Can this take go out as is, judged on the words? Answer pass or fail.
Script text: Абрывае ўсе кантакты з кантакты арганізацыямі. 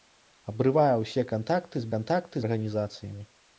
pass